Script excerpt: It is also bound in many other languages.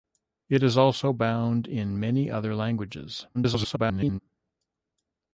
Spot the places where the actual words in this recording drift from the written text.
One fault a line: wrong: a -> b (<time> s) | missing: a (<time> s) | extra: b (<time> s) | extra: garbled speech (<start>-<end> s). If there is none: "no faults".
extra: garbled speech (3.3-4.2 s)